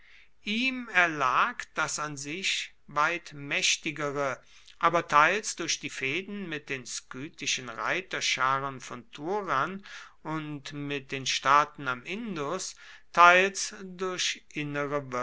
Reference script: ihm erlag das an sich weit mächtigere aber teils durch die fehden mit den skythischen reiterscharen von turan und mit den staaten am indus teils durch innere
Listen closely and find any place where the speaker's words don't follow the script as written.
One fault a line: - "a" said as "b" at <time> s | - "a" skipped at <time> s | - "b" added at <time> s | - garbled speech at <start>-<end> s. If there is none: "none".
none